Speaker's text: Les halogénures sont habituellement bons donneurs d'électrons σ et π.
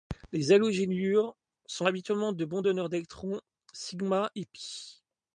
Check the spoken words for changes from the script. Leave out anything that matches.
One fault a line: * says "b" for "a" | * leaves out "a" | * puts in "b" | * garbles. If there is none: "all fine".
* puts in "de"